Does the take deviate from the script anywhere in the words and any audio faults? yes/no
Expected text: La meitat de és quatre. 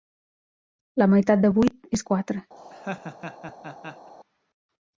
yes